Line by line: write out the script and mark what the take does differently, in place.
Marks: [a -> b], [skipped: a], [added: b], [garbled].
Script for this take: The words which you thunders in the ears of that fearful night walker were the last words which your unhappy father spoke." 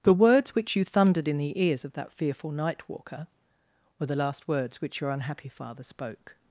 The words which you [thunders -> thundered] in the ears of that fearful night walker were the last words which your unhappy father spoke."